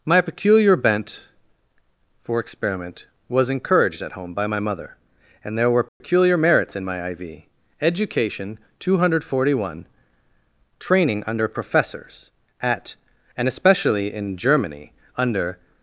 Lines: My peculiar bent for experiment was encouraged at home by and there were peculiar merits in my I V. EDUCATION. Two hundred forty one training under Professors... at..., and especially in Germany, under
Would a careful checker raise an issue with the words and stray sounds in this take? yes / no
yes